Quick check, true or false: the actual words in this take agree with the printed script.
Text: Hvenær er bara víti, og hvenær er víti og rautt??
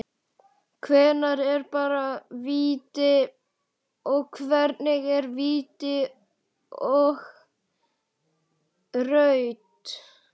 true